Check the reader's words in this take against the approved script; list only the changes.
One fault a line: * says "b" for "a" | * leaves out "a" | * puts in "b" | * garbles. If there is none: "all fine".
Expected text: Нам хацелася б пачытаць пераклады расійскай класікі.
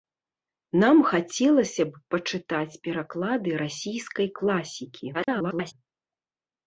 * garbles